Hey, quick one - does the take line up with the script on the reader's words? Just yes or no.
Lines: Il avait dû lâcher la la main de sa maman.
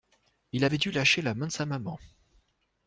no